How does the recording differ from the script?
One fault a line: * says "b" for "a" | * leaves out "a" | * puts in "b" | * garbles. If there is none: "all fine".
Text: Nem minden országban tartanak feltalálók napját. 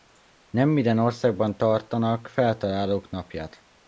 all fine